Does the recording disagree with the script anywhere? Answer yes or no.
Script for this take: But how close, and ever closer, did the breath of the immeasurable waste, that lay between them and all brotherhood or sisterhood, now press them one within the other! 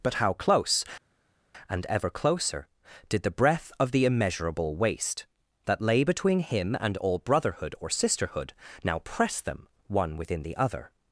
yes